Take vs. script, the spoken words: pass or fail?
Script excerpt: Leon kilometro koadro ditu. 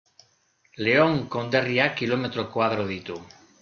fail